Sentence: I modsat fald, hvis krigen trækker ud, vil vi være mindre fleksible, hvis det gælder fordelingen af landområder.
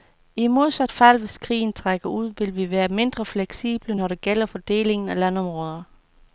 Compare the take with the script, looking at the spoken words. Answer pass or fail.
fail